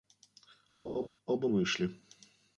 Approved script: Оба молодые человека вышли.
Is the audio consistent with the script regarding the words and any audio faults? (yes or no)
no